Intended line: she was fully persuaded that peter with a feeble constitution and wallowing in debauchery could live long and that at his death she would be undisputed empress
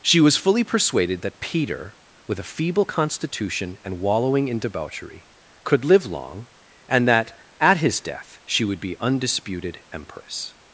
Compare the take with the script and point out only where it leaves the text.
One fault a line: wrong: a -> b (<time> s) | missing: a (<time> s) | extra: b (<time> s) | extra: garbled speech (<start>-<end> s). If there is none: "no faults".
no faults